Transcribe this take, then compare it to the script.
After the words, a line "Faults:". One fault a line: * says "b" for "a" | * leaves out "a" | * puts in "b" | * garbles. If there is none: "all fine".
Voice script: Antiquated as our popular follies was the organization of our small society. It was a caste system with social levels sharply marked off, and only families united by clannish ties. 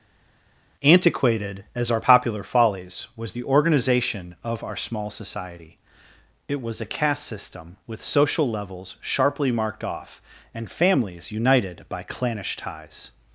Antiquated as our popular follies was the organization of our small society. It was a caste system with social levels sharply marked off, and families united by clannish ties.
Faults:
* leaves out "only"